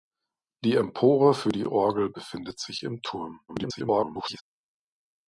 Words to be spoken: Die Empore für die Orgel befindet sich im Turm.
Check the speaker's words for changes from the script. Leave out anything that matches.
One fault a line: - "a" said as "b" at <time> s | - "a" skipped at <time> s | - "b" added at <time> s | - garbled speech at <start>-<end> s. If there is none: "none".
- garbled speech at 3.5-4.4 s